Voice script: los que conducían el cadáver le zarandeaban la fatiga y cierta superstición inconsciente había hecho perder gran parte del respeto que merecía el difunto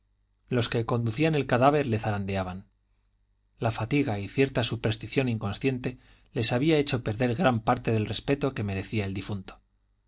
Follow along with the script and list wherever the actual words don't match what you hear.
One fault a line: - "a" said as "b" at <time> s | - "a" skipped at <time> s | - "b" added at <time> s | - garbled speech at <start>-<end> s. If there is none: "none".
- "les" added at 6.3 s